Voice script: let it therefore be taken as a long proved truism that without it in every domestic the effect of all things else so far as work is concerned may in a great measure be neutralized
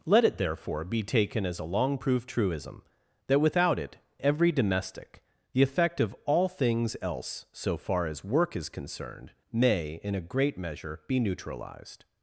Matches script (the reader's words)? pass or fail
fail